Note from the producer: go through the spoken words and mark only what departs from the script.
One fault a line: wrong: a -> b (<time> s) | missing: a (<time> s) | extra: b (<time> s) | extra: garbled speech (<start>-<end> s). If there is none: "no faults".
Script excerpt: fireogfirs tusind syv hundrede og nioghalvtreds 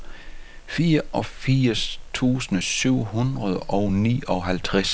no faults